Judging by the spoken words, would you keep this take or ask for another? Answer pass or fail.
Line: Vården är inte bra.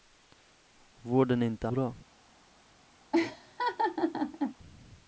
pass